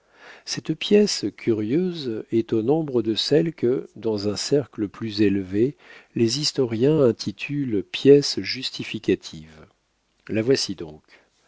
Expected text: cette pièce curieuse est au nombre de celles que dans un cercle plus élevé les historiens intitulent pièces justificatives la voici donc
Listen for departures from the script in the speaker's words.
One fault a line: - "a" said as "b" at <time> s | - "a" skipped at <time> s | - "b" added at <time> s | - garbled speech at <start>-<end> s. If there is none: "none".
none